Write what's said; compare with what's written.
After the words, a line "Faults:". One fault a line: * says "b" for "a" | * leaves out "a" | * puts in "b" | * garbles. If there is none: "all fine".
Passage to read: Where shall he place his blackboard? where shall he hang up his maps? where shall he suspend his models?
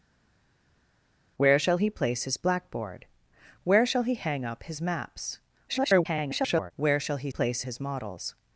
Where shall he place his blackboard? where shall he hang up his maps? [garbled] where shall he place his models?
Faults:
* garbles
* says "place" for "suspend"